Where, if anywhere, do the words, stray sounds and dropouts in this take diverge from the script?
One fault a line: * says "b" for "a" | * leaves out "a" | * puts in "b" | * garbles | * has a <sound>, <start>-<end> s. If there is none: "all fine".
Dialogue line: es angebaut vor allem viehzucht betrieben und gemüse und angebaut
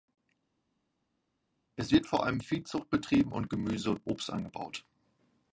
* says "wird" for "angebaut"
* puts in "obst"